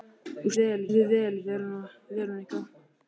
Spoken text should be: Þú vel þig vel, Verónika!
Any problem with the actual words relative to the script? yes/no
no